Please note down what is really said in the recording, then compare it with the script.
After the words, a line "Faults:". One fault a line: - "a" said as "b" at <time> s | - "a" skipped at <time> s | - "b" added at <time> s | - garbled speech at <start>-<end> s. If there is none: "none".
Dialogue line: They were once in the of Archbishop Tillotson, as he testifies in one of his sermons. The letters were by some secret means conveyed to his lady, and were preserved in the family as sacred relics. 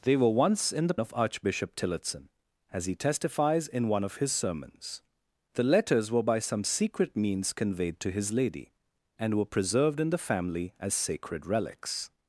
They were once in the of Archbishop Tillotson, as he testifies in one of his sermons. The letters were by some secret means conveyed to his lady, and were preserved in the family as sacred relics.
Faults:
none